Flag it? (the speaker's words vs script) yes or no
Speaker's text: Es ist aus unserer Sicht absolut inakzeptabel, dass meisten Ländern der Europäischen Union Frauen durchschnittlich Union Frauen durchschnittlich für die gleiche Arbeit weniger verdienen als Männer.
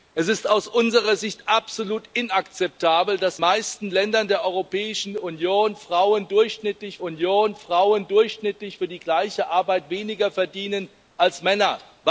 no